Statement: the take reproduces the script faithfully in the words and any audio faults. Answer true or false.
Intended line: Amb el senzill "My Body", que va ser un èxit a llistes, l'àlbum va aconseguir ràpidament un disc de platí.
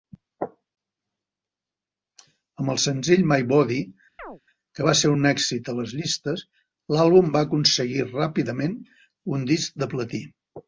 false